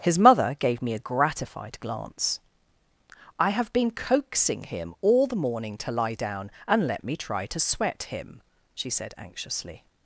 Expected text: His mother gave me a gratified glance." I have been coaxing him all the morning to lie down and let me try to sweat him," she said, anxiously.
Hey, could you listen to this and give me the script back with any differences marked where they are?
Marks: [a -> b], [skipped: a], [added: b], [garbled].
His mother gave me a gratified glance." I have been coaxing him all the morning to lie down and let me try to sweat him," she said, anxiously.